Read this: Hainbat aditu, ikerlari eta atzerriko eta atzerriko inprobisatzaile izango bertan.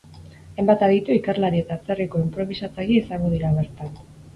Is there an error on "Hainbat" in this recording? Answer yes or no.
no